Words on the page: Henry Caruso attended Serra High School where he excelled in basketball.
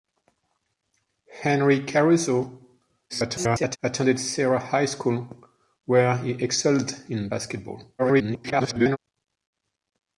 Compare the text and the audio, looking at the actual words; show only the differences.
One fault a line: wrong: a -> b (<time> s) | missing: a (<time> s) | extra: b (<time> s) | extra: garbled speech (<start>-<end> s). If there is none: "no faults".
extra: garbled speech (3.1-3.8 s)
extra: garbled speech (8.0-9.0 s)